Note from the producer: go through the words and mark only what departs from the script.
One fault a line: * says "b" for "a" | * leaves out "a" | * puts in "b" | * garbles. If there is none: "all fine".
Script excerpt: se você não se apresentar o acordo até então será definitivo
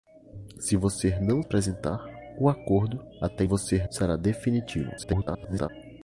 * leaves out "se"
* says "você" for "então"
* garbles